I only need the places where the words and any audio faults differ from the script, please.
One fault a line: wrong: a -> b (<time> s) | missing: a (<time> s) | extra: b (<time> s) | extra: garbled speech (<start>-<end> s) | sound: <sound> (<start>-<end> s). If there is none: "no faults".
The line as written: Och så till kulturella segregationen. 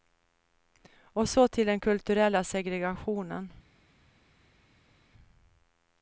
extra: den (1.7 s)